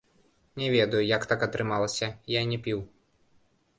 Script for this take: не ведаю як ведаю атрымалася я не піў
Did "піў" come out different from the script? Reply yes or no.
no